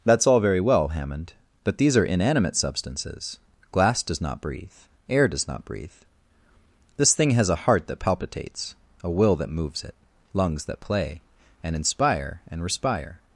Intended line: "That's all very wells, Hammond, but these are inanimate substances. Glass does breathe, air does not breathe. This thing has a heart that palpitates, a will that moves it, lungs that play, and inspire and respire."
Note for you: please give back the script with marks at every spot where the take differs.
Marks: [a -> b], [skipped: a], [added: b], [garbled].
"That's all very [wells, -> well] Hammond, but these are inanimate substances. Glass does [added: not] breathe, air does not breathe. This thing has a heart that palpitates, a will that moves it, lungs that play, and inspire and respire."